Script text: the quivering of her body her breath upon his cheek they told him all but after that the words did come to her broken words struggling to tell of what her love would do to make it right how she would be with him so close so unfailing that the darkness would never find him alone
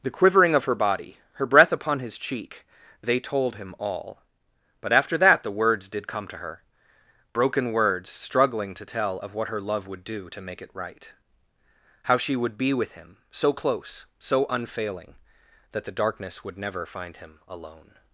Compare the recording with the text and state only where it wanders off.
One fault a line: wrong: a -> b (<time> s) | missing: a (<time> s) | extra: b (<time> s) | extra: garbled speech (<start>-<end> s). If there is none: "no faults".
no faults